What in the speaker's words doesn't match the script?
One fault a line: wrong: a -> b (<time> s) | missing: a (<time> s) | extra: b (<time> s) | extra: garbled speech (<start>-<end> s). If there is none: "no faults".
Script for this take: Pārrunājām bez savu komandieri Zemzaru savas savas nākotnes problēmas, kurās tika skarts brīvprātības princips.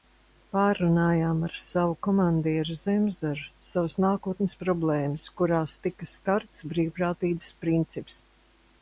wrong: bez -> ar (1.5 s)
missing: savas (4.0 s)